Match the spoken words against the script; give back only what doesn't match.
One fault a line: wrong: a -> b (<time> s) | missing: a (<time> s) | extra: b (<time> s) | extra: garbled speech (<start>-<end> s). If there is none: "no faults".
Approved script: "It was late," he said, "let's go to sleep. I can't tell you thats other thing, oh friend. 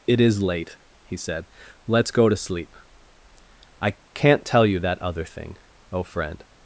wrong: was -> is (0.2 s)
wrong: thats -> that (4.8 s)